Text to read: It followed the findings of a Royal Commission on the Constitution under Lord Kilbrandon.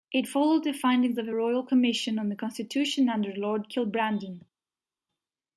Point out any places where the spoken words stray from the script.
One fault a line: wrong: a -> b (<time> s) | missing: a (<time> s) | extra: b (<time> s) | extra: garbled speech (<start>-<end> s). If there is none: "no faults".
no faults